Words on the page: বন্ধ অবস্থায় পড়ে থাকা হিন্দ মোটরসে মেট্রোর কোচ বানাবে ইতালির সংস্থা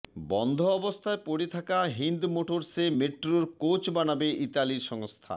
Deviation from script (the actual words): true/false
false